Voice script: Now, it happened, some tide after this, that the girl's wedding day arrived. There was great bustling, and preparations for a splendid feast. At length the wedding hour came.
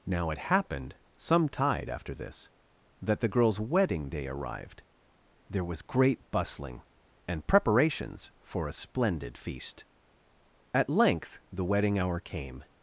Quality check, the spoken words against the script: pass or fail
pass